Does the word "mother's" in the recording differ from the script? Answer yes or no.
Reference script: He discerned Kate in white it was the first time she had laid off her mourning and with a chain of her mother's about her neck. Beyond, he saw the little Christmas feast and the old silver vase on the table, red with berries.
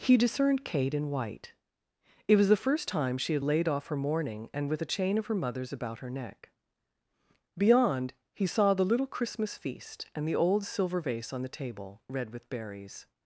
no